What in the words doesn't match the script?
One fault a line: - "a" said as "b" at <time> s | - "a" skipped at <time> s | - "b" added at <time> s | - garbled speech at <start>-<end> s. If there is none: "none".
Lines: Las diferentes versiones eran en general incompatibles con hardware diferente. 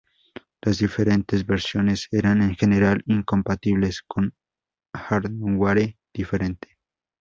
none